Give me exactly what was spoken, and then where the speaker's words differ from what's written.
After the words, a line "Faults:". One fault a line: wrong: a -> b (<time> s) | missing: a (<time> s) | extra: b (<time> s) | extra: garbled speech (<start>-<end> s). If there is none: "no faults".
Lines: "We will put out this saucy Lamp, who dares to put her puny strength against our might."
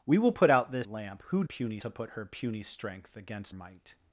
"We will put out this Lamp, who puny to put her puny strength against might."
Faults:
missing: saucy (0.9 s)
wrong: dares -> puny (1.4 s)
missing: our (3.6 s)